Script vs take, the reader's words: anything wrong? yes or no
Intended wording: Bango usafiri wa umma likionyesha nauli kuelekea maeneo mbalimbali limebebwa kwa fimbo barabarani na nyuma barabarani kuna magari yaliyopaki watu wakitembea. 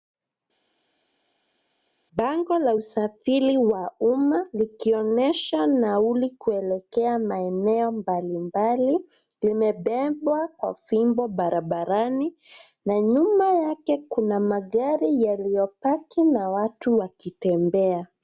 yes